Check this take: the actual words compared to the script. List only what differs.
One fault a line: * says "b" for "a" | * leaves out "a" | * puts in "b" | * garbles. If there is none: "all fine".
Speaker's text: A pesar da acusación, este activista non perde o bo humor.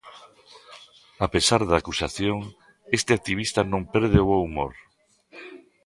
all fine